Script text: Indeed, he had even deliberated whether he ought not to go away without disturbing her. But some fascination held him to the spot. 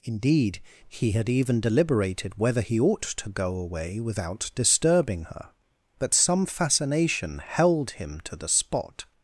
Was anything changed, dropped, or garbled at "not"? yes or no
yes